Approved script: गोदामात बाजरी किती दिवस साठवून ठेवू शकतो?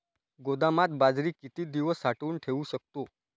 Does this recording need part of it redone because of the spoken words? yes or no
no